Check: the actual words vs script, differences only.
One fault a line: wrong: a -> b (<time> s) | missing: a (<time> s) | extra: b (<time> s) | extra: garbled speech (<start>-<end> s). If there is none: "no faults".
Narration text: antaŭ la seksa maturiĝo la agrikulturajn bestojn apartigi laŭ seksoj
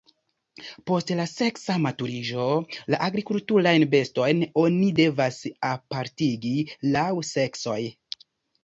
wrong: antaŭ -> post (0.9 s)
extra: oni devas (4.7 s)